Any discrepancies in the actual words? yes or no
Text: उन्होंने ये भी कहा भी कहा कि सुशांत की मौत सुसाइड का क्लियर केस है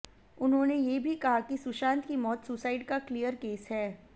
yes